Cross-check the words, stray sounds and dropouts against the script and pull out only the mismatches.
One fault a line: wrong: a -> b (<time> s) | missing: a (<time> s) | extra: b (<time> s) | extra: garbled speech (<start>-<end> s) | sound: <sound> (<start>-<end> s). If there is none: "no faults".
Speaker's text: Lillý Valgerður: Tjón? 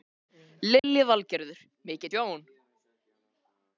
sound: dropout (0.8-0.8 s)
extra: Mikið (1.9 s)